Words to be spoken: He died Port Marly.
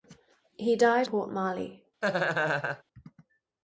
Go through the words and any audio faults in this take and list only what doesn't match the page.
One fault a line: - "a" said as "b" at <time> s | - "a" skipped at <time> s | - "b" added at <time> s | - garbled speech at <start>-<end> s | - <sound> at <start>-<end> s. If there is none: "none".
- laugh at 2.0-2.8 s